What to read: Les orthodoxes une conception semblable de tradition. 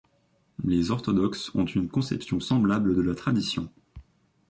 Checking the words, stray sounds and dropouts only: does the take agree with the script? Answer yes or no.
no